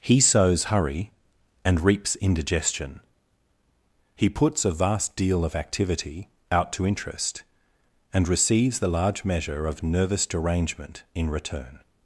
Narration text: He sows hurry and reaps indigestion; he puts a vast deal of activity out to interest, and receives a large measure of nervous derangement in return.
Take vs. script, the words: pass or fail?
fail